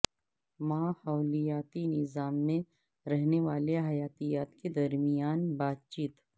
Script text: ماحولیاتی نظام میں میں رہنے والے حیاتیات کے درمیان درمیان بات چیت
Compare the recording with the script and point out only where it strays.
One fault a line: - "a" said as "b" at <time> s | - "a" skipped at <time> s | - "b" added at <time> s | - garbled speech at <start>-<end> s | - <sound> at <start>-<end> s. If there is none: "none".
- "میں" skipped at 2.6 s
- "درمیان" skipped at 5.5 s